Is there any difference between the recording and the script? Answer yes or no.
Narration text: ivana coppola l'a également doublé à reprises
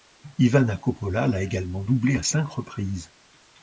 yes